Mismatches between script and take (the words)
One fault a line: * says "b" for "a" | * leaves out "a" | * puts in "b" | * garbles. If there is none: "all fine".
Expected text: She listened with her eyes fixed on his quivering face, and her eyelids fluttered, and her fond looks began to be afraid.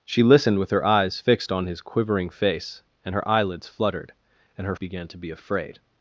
* leaves out "fond looks"